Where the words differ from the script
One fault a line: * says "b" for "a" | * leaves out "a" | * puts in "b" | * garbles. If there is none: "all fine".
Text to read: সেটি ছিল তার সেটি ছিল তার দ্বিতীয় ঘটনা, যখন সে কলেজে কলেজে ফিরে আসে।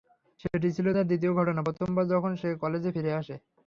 * leaves out "সেটি ছিল তার"
* puts in "প্রথমবার"
* leaves out "কলেজে"